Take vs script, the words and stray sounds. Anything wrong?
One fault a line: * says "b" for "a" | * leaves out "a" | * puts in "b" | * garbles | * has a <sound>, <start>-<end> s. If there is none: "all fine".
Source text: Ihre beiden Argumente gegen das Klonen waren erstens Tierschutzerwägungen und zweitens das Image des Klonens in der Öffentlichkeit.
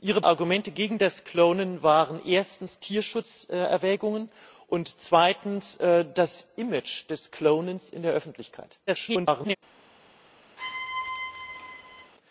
* leaves out "beiden"
* garbles
* has a squeak, 10.6-12.1 s